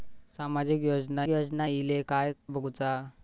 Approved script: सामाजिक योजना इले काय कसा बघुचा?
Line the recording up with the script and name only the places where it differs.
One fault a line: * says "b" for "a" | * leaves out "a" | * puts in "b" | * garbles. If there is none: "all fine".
* puts in "योजना"
* leaves out "कसा"